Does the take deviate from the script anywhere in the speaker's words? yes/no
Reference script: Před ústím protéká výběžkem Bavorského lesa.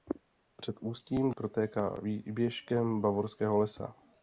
no